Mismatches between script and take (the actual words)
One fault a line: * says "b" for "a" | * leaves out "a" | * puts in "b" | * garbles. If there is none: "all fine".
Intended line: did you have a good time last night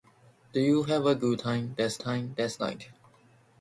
* puts in "time last"